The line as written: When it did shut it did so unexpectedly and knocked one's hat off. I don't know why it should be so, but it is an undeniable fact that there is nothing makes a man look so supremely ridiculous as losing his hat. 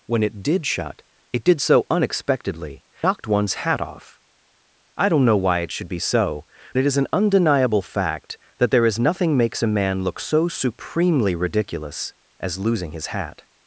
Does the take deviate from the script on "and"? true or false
true